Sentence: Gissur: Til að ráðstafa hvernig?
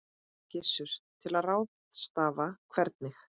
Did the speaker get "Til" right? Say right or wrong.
right